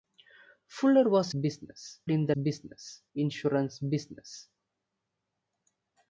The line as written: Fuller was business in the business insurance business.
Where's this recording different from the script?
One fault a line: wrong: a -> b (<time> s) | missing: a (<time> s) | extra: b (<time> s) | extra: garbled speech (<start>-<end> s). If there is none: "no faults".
no faults